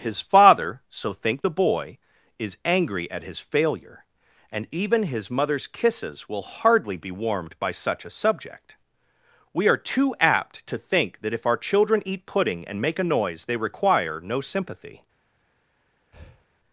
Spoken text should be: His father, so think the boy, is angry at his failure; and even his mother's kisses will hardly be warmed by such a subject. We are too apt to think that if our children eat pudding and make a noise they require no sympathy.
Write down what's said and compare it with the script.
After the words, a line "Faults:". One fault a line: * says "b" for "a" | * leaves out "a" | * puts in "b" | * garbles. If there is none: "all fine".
His father, so think the boy, is angry at his failure; and even his mother's kisses will hardly be warmed by such a subject. We are too apt to think that if our children eat pudding and make a noise they require no sympathy.
Faults:
all fine